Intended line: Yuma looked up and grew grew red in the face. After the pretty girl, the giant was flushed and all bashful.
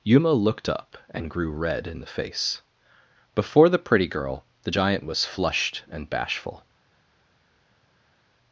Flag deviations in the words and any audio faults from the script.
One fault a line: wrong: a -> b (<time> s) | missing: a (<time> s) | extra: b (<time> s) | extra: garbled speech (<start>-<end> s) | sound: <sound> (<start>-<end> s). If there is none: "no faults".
missing: grew (1.5 s)
wrong: After -> Before (3.4 s)
missing: all (6.1 s)